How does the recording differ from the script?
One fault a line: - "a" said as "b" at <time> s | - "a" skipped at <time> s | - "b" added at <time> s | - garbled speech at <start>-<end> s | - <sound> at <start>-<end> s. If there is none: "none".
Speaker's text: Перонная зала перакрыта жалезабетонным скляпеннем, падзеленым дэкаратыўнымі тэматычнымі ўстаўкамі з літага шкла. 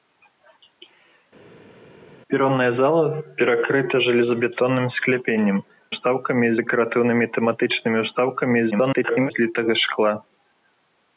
- "падзеленым" said as "ўстаўкамі" at 5.9 s
- garbled speech at 8.7-9.3 s